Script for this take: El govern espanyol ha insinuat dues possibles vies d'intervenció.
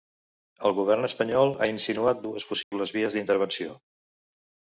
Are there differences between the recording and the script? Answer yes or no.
no